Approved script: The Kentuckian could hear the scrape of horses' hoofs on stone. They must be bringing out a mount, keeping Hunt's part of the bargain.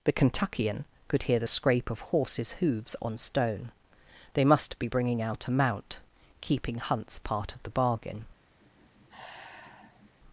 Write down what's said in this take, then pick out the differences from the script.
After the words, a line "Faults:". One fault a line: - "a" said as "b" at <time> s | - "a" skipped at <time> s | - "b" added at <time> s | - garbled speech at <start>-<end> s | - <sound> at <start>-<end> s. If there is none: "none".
The Kentuckian could hear the scrape of horses' hoofs on stone. They must be bringing out a mount, keeping Hunt's part of the bargain.
Faults:
- sigh at 8.6-10.1 s